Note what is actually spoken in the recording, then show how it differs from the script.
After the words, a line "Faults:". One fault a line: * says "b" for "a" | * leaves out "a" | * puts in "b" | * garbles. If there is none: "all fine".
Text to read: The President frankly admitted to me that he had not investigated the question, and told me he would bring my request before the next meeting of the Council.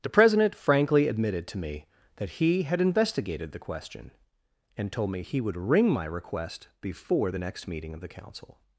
The President frankly admitted to me that he had investigated the question, and told me he would ring my request before the next meeting of the Council.
Faults:
* leaves out "not"
* says "ring" for "bring"